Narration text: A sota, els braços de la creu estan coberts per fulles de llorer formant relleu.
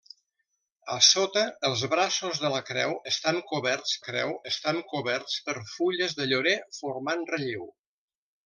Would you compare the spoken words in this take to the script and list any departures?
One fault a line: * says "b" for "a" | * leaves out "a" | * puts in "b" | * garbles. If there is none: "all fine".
* puts in "creu estan coberts"